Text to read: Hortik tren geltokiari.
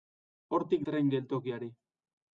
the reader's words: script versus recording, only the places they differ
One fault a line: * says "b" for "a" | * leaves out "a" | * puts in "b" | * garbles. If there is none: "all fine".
all fine